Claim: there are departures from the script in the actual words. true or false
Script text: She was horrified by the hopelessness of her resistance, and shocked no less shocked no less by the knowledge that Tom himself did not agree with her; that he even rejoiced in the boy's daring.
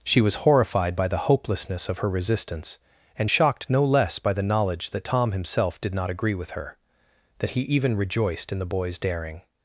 true